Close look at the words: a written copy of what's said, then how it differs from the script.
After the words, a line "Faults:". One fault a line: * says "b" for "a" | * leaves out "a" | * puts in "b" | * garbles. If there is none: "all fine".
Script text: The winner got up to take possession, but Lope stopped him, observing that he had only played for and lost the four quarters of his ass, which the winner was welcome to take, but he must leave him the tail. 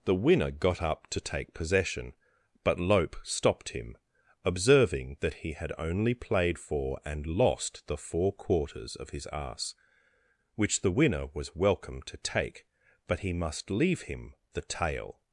The winner got up to take possession, but Lope stopped him, observing that he had only played for and lost the four quarters of his ass, which the winner was welcome to take, but he must leave him the tail.
Faults:
all fine